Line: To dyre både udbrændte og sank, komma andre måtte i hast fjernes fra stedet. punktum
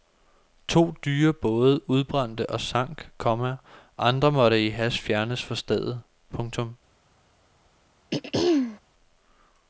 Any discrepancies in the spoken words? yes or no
no